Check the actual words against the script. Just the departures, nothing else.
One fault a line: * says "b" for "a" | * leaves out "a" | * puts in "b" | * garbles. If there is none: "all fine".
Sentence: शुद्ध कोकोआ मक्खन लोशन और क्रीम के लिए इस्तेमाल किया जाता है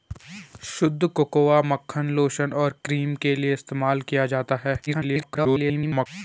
* garbles